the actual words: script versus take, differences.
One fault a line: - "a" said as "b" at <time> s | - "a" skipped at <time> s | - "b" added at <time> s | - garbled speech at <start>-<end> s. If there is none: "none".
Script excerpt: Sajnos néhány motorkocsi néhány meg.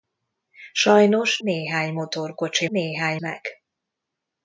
none